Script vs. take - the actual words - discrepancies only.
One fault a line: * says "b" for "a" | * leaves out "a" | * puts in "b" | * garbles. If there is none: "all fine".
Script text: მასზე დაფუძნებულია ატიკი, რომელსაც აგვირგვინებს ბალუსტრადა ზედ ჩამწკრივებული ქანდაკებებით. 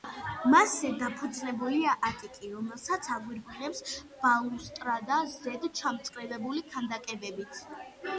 all fine